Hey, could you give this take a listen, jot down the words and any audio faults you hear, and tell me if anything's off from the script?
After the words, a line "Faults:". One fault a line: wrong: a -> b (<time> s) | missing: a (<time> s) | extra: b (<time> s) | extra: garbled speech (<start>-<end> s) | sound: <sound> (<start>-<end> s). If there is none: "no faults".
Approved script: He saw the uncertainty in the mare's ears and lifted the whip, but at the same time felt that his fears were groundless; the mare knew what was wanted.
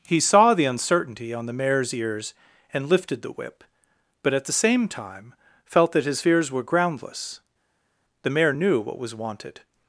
He saw the uncertainty on the mare's ears and lifted the whip, but at the same time felt that his fears were groundless; the mare knew what was wanted.
Faults:
wrong: in -> on (1.3 s)